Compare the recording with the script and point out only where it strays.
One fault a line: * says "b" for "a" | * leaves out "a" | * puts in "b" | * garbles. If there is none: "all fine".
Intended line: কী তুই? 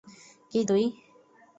all fine